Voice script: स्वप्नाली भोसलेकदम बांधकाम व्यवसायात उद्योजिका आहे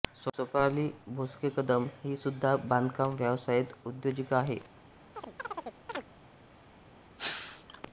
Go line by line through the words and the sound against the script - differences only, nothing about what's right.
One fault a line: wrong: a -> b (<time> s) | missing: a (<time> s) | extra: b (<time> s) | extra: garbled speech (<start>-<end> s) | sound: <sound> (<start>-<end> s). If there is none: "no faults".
extra: ही सुद्धा (2.0 s)
sound: chirp (5.1-6.1 s)
sound: sneeze (7.2-7.8 s)